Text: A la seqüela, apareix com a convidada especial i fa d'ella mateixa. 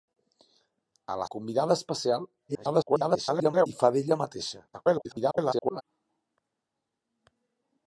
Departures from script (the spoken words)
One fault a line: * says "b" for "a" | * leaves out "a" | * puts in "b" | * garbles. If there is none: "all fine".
* leaves out "seqüela apareix com"
* garbles
* garbles